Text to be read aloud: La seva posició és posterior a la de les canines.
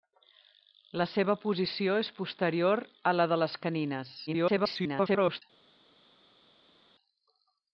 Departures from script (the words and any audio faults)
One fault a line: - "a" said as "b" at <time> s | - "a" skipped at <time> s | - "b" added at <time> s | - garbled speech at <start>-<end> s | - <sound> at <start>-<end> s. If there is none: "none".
- garbled speech at 4.3-5.4 s